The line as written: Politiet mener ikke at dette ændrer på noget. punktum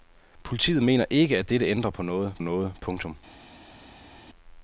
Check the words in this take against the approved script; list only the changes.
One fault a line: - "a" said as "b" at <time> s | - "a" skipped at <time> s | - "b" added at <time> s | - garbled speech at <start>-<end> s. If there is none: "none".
- "noget" added at 2.4 s